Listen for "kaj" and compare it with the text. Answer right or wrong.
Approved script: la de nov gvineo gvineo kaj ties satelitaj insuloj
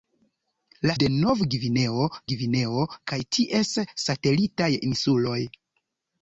right